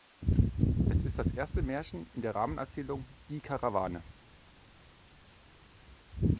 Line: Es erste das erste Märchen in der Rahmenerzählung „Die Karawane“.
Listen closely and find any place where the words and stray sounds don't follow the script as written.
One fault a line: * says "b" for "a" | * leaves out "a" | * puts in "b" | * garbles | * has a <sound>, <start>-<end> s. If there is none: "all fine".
* says "ist" for "erste"